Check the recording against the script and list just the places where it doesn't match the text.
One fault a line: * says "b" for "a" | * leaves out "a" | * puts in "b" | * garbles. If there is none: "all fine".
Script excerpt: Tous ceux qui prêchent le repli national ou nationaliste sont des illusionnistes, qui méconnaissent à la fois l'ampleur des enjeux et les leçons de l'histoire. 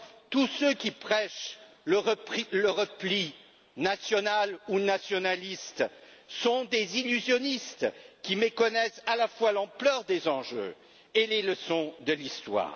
all fine